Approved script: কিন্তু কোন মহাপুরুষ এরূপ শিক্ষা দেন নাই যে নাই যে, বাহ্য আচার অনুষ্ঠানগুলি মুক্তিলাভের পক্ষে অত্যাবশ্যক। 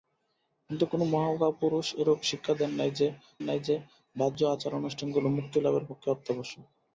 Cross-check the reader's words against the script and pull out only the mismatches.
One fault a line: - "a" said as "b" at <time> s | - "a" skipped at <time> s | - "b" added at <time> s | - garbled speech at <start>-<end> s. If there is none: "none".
none